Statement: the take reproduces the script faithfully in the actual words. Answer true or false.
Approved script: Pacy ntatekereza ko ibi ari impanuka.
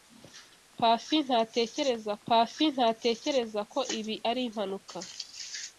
false